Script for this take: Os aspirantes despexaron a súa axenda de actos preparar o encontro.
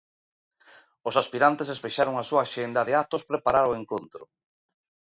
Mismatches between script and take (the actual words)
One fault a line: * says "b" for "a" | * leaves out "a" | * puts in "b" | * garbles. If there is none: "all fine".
all fine